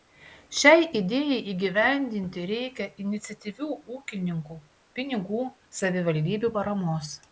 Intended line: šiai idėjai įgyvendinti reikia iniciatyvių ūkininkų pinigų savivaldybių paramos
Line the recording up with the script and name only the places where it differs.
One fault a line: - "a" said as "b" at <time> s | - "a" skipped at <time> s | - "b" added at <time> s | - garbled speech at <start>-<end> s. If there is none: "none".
none